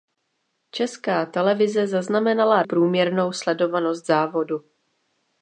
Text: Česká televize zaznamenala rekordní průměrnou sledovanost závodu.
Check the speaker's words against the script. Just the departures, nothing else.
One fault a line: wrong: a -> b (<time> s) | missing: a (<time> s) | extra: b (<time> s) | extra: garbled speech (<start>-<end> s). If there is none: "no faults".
missing: rekordní (2.6 s)